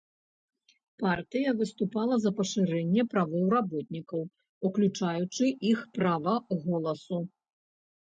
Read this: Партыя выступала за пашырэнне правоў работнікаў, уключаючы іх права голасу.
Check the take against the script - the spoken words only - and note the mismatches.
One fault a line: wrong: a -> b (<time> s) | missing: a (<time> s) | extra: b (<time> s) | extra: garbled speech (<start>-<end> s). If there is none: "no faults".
no faults